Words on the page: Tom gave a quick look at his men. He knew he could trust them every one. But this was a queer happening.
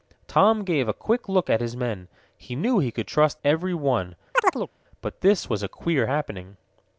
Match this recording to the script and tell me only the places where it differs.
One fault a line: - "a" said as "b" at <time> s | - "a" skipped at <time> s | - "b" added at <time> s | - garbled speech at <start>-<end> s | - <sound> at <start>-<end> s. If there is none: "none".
- "them" skipped at 3.4 s
- chirp at 4.3-4.7 s